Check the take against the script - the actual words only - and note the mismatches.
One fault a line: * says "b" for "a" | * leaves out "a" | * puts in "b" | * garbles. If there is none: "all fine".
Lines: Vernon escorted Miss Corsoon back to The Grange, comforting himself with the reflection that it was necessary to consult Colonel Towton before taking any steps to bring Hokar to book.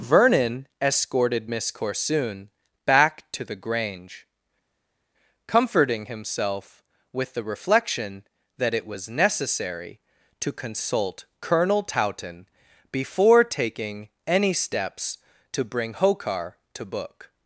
all fine